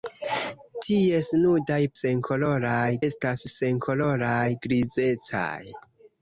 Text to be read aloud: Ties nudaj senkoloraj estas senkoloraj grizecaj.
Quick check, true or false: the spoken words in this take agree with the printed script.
true